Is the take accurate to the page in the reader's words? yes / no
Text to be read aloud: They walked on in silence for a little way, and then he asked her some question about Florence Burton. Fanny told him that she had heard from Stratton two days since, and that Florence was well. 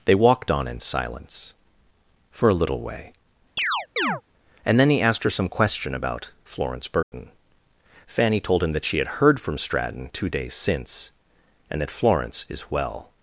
no